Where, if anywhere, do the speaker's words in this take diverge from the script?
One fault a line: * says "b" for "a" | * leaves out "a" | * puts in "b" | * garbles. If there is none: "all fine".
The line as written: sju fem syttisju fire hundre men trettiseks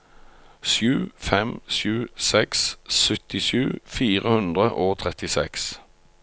* puts in "sju seks"
* says "og" for "men"